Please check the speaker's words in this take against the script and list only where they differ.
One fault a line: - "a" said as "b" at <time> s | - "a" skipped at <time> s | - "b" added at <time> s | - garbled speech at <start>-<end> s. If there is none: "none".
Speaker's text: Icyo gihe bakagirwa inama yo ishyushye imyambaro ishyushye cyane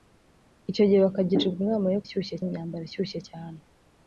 none